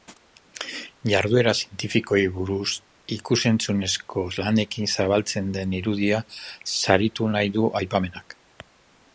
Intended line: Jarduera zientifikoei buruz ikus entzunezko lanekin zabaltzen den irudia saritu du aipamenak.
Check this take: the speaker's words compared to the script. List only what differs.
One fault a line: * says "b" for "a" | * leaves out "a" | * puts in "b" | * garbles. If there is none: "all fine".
* puts in "nahi"